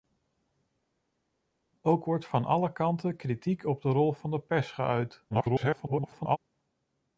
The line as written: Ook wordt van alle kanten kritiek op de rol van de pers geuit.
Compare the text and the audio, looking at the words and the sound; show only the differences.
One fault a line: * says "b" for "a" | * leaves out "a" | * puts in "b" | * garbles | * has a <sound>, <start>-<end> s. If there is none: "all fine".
* garbles